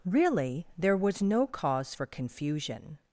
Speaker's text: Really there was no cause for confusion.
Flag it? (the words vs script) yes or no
no